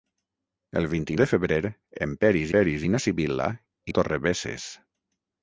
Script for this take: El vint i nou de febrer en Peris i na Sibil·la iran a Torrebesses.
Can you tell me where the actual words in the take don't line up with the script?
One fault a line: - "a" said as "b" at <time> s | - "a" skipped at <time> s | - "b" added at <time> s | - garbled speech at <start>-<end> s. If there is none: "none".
- "nou" skipped at 1.2 s
- "Peris" added at 2.6 s
- "iran" skipped at 3.5 s